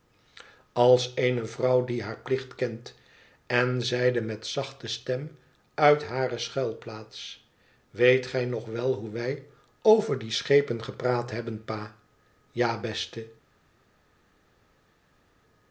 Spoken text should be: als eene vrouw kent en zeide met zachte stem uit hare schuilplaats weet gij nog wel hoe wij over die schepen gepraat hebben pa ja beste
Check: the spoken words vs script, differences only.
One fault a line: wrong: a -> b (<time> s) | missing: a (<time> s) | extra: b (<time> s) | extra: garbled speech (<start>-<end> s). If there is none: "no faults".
extra: die haar plicht (1.9 s)